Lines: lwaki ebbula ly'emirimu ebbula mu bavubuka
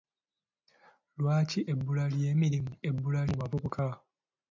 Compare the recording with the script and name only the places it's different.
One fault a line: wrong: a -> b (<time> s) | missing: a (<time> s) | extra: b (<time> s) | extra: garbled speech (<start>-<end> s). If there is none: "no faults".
no faults